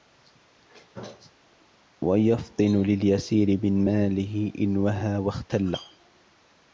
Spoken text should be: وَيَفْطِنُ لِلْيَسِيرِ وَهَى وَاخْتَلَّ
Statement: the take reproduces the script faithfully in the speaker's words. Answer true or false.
false